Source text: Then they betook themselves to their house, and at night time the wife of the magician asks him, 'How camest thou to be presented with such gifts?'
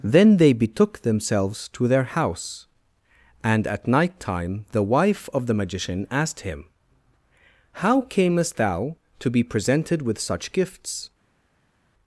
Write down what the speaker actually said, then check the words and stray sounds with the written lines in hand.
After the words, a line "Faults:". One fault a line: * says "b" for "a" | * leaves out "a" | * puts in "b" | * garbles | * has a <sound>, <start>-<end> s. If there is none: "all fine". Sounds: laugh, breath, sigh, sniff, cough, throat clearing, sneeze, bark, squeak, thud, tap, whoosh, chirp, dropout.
Then they betook themselves to their house, and at night time the wife of the magician asked him, 'How camest thou to be presented with such gifts?'
Faults:
* says "asked" for "asks"